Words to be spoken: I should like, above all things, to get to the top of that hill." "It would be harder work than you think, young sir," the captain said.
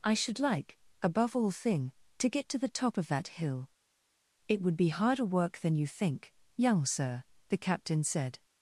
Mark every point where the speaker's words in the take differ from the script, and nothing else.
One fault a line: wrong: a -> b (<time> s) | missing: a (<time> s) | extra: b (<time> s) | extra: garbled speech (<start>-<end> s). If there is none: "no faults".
wrong: things -> thing (1.5 s)